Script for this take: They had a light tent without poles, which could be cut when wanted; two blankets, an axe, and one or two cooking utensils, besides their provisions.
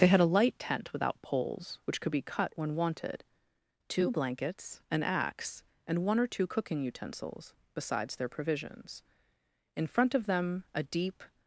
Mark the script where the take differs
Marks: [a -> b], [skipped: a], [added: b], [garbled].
They had a light tent without poles, which could be cut when wanted; two blankets, an axe, and one or two cooking utensils, besides their provisions. [added: In front of them a deep]